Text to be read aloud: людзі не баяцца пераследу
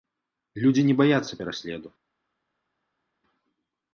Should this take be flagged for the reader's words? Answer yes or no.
no